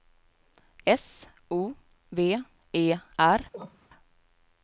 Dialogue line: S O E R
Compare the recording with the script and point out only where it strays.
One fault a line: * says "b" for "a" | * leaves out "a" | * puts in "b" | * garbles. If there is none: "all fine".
* puts in "V"